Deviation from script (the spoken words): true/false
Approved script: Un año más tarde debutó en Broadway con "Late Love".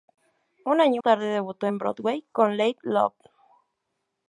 true